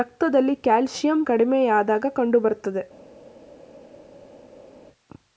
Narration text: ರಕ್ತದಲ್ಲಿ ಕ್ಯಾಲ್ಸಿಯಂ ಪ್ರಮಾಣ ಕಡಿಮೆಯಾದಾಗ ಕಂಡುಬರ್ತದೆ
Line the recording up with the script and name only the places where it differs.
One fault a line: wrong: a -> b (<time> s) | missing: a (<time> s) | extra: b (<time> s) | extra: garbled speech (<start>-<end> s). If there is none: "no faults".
missing: ಪ್ರಮಾಣ (1.2 s)